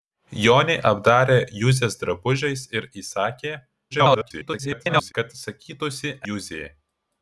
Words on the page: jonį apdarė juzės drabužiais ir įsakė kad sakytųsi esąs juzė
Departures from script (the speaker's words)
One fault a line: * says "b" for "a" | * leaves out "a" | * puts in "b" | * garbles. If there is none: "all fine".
* garbles
* leaves out "esąs"